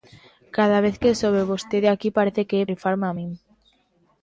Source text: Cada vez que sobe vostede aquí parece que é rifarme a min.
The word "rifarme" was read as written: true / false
true